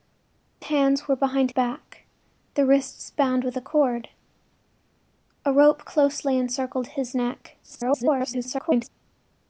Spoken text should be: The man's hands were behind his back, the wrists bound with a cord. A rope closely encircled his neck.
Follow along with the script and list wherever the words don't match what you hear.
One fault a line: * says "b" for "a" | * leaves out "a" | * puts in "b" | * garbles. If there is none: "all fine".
* leaves out "man's"
* leaves out "his"
* garbles